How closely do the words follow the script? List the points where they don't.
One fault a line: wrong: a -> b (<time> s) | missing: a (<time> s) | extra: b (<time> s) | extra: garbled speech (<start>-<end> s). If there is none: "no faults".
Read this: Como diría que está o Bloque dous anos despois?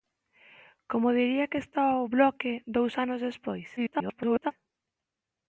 extra: garbled speech (3.8-4.5 s)